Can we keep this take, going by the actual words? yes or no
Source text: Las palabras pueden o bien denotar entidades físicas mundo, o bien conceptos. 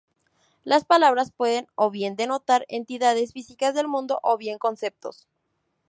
no